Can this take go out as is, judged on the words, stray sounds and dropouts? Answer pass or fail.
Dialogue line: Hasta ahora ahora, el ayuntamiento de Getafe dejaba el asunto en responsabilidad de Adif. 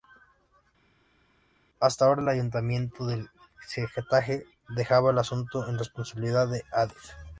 fail